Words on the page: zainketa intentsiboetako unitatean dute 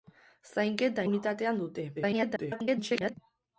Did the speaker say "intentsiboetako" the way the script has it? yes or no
no